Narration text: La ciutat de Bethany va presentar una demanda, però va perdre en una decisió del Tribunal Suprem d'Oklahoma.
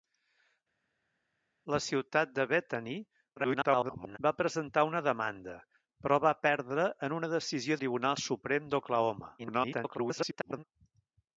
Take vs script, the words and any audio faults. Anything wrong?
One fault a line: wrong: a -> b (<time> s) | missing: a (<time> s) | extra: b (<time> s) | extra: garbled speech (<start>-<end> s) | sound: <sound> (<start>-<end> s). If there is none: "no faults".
extra: garbled speech (3.4-4.2 s)
missing: del (7.8 s)
extra: garbled speech (9.4-10.6 s)